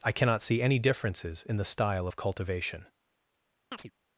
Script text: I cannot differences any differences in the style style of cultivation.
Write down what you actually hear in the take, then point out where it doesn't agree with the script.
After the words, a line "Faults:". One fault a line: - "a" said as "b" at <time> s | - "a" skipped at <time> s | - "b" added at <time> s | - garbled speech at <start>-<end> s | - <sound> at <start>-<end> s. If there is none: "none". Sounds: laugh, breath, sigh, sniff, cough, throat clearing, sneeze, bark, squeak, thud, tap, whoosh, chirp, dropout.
I cannot see any differences in the style of cultivation.
Faults:
- "differences" said as "see" at 0.4 s
- "style" skipped at 2.1 s
- chirp at 3.7-3.9 s